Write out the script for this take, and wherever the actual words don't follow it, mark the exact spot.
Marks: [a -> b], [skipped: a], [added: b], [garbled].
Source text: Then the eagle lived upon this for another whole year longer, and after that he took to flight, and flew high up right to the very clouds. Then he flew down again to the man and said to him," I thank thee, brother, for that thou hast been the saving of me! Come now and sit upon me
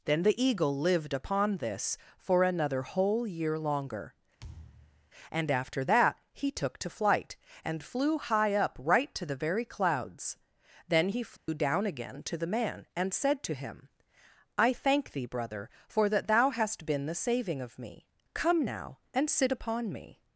Then the eagle lived upon this for another whole year longer, and after that he took to flight, and flew high up right to the very clouds. Then he flew down again to the man and said to him," I thank thee, brother, for that thou hast been the saving of me! Come now and sit upon me